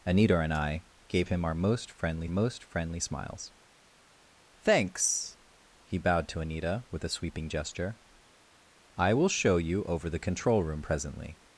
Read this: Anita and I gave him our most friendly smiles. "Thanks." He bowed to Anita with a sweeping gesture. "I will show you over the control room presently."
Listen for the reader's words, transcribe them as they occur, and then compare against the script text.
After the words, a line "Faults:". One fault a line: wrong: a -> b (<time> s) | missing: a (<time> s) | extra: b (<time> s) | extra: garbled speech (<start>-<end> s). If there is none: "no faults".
Anita and I gave him our most friendly most friendly smiles. "Thanks." He bowed to Anita with a sweeping gesture. "I will show you over the control room presently."
Faults:
extra: most friendly (2.3 s)